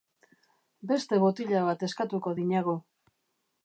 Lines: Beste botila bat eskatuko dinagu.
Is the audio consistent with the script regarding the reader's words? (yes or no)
yes